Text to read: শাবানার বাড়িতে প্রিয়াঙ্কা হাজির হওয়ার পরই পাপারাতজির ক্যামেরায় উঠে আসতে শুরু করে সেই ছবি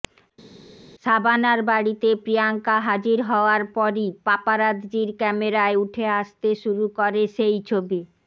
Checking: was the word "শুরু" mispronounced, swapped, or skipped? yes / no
no